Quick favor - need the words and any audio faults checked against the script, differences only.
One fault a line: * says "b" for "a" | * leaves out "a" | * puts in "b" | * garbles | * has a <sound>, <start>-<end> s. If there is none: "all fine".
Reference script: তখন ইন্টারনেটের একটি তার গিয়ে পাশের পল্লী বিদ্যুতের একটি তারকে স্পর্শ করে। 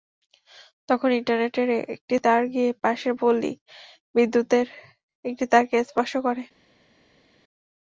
all fine